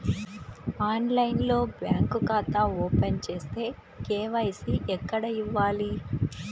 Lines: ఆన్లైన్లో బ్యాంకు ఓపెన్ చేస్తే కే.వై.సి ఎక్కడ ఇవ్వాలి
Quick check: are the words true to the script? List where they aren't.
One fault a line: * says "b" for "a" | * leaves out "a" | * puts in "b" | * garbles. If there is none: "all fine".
* puts in "ఖాతా"